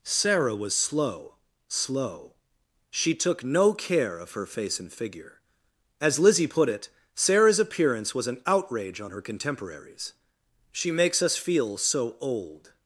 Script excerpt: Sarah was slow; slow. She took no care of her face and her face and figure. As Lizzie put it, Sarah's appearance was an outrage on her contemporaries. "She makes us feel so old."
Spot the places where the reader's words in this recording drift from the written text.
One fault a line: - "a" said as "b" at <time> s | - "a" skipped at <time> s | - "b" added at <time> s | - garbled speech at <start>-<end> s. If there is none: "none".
- "her face and" skipped at 4.9 s